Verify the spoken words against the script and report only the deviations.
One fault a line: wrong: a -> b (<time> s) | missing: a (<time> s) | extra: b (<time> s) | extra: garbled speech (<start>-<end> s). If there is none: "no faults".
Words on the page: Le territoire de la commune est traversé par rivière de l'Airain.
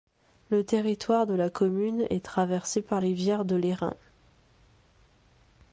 no faults